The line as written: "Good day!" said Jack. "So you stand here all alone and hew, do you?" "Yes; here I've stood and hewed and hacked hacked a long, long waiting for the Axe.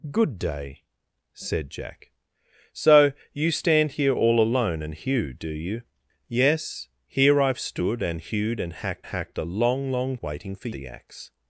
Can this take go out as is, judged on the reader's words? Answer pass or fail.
pass